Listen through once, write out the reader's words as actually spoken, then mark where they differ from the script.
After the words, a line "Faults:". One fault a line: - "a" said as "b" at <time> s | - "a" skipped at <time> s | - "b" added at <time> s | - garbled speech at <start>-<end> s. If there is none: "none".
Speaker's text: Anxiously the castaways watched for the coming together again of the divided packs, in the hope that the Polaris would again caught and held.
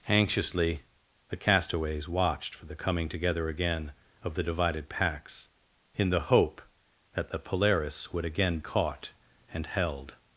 Anxiously the castaways watched for the coming together again of the divided packs, in the hope that the Polaris would again caught and held.
Faults:
none